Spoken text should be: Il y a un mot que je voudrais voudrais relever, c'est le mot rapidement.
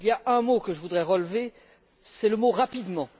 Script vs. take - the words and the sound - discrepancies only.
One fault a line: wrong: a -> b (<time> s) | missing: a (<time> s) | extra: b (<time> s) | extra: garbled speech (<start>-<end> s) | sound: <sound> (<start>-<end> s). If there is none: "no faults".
missing: voudrais (1.0 s)